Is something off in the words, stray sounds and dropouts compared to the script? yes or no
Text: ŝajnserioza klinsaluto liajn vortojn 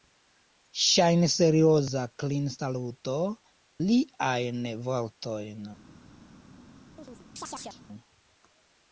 yes